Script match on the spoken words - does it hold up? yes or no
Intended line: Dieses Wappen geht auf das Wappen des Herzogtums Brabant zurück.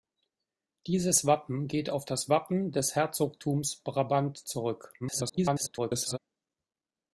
no